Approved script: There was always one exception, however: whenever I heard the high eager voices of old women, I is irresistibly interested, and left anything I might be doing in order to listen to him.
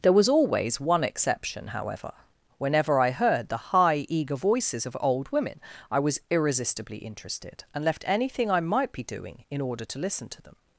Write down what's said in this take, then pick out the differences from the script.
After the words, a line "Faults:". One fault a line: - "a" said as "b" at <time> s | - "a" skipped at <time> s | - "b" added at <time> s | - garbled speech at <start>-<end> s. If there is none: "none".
There was always one exception, however: whenever I heard the high eager voices of old women, I was irresistibly interested, and left anything I might be doing in order to listen to them.
Faults:
- "is" said as "was" at 6.0 s
- "him" said as "them" at 10.4 s